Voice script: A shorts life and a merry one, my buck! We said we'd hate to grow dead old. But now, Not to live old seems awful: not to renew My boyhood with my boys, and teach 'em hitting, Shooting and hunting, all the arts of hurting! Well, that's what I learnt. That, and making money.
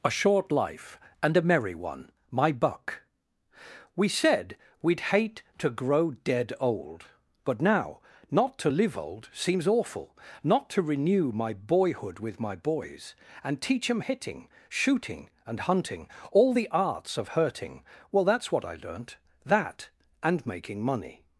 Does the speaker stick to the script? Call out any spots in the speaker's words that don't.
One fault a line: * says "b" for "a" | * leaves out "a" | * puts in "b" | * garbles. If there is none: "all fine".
* says "short" for "shorts"